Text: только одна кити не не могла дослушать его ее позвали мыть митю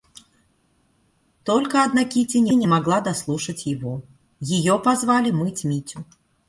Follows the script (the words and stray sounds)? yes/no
yes